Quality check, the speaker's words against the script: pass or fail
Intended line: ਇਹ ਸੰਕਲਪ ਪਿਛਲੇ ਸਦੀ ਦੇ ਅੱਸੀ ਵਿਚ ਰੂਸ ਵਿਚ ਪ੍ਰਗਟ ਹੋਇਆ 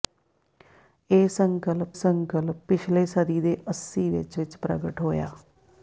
fail